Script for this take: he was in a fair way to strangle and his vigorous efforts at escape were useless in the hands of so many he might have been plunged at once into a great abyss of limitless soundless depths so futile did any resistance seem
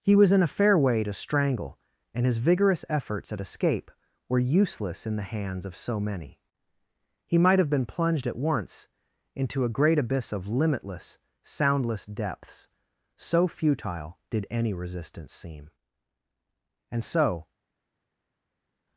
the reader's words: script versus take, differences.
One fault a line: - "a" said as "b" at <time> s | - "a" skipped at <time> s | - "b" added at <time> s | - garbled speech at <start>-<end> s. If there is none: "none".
- "and so" added at 16.9 s